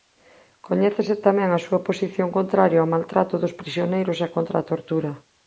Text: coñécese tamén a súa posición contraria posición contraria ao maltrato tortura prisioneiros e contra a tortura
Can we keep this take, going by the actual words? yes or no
no